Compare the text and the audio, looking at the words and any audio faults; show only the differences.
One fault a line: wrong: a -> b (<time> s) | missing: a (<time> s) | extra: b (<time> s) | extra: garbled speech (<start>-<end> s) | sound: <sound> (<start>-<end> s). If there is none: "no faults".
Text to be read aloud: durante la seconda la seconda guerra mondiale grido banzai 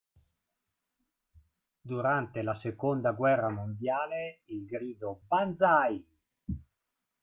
missing: la seconda (3.1 s)
extra: il (4.5 s)